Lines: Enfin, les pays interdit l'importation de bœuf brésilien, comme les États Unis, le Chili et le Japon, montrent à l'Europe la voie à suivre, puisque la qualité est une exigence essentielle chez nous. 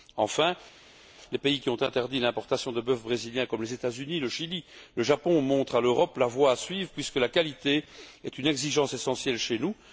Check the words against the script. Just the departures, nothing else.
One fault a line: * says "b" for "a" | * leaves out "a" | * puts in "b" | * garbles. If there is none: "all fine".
* puts in "qui ont"